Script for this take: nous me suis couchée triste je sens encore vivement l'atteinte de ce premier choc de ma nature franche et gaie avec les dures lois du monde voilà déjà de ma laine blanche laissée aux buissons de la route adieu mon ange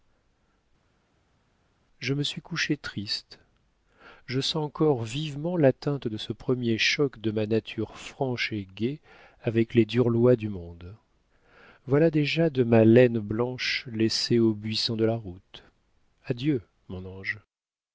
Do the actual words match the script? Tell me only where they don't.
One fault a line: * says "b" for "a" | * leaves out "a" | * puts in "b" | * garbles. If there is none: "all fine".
* says "je" for "nous"